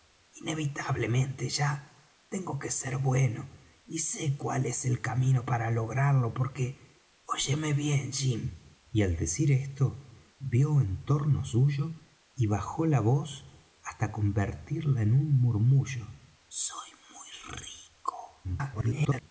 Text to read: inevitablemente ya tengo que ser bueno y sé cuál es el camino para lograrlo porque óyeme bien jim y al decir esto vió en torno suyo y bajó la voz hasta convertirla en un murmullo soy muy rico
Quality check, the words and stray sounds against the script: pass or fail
fail